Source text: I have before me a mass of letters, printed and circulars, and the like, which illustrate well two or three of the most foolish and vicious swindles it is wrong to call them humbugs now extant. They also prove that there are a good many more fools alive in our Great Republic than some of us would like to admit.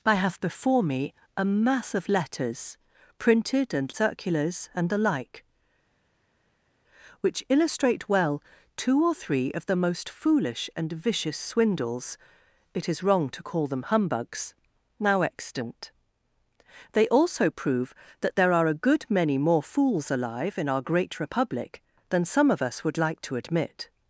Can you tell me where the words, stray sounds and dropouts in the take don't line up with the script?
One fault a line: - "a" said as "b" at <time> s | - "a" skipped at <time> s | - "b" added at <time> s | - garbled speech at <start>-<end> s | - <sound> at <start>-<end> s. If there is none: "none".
none